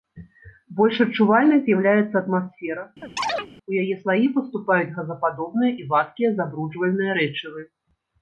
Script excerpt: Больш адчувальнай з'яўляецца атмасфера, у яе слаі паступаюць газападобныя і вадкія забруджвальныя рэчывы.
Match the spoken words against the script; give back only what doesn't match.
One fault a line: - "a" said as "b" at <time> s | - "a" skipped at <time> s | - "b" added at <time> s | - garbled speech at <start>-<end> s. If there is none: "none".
none